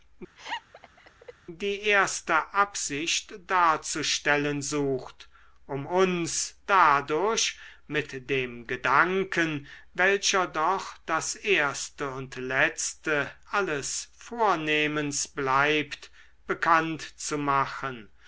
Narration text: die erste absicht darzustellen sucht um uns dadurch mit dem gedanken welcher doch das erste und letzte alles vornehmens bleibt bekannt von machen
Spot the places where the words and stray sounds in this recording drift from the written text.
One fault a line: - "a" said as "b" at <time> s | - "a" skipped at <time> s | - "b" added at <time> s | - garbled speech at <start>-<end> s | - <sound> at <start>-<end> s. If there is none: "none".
- laugh at 0.4-1.3 s
- "von" said as "zu" at 17.2 s